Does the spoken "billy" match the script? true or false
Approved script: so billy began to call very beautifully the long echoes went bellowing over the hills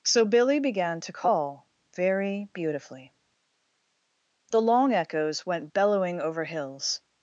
true